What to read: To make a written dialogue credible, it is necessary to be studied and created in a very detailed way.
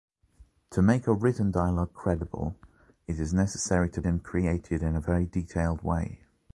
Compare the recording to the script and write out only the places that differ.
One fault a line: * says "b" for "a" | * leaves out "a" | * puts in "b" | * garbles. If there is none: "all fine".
* leaves out "be studied"